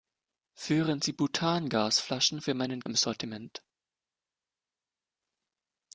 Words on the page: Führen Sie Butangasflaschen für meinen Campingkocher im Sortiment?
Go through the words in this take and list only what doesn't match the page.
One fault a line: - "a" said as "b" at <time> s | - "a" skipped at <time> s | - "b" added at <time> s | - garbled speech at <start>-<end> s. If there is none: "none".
- "Campingkocher" skipped at 2.8 s